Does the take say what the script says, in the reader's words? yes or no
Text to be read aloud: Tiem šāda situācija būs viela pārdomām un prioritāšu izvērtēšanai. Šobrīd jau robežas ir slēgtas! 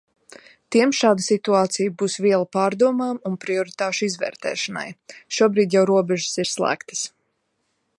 yes